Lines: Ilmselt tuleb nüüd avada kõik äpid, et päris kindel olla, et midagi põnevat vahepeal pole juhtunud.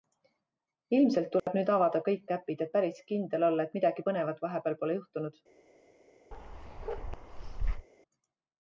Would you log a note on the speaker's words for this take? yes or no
no